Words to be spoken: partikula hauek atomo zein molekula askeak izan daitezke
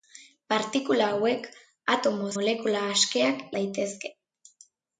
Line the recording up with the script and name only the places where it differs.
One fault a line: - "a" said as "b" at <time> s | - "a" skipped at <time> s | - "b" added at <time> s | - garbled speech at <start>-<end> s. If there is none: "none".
- "zein" skipped at 2.3 s
- "izan" skipped at 3.4 s